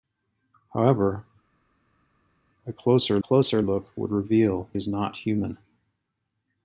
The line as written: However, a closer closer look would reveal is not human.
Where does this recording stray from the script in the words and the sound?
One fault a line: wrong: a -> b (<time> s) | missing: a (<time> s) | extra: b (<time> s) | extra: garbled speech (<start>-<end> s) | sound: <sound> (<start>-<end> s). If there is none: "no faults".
no faults